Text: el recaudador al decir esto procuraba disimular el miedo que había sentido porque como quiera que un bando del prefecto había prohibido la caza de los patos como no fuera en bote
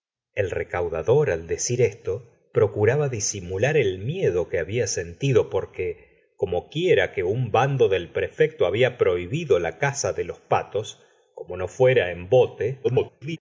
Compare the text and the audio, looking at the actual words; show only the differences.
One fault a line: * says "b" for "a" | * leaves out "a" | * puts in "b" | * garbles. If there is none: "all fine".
* garbles